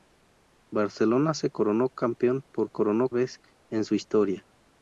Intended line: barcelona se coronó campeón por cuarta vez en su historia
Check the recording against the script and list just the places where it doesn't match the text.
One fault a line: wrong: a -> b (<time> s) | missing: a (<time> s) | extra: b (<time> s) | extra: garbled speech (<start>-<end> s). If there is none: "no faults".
wrong: cuarta -> coronó (2.7 s)